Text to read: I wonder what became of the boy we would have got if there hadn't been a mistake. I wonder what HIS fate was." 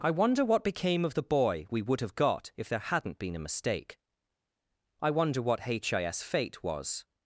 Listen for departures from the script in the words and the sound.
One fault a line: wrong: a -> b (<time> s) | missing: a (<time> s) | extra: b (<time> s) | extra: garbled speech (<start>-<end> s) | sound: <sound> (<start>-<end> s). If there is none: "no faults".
no faults